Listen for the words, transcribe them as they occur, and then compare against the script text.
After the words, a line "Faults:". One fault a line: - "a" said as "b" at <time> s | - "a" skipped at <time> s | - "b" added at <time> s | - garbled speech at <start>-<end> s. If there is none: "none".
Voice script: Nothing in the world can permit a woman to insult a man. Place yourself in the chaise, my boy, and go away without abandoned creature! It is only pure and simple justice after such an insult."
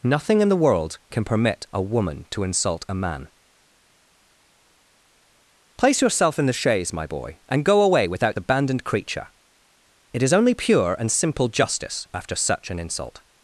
Nothing in the world can permit a woman to insult a man. Place yourself in the chaise, my boy, and go away without abandoned creature! It is only pure and simple justice after such an insult."
Faults:
none